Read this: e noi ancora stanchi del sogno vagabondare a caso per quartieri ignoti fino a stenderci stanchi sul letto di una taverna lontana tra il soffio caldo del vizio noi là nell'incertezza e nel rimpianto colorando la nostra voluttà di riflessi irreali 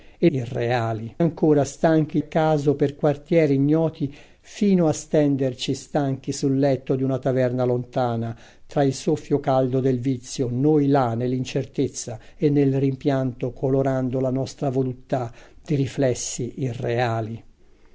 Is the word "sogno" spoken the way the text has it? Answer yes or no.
no